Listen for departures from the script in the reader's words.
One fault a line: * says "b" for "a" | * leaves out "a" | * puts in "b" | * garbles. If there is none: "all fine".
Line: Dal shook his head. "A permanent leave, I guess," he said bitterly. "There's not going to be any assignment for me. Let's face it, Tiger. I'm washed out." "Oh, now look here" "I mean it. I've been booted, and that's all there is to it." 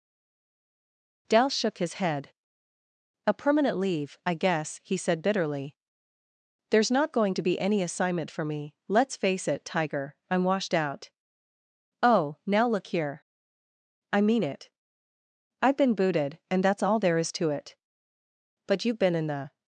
* puts in "But you've been in the"